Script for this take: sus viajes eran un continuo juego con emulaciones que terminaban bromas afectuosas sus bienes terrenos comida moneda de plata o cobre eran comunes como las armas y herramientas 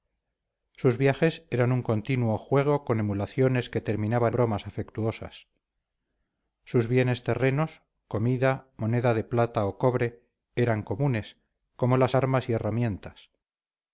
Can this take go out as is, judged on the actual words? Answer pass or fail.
pass